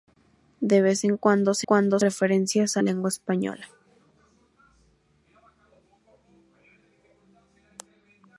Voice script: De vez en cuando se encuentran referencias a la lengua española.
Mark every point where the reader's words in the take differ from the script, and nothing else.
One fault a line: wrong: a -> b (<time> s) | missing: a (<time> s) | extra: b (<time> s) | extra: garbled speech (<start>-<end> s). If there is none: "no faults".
wrong: encuentran -> cuando (1.6 s)
missing: la (2.8 s)